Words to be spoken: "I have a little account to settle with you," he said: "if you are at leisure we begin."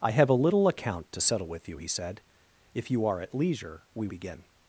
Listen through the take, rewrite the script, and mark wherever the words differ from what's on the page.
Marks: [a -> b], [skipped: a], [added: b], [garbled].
"I have a little account to settle with you," he said: "if you are at leisure we begin."